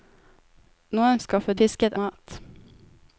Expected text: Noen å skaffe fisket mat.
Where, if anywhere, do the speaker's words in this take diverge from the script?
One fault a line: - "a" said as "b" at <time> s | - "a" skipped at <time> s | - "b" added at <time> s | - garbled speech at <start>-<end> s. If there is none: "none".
none